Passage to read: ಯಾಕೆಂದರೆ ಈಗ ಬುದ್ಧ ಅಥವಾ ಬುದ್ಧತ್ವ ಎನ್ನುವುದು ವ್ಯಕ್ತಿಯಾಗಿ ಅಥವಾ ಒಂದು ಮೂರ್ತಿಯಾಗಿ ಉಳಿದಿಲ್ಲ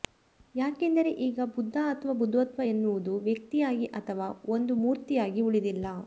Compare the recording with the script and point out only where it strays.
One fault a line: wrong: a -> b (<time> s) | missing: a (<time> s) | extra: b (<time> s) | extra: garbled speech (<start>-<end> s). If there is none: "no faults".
no faults